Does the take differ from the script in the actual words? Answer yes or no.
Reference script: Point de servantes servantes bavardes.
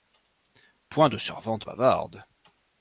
yes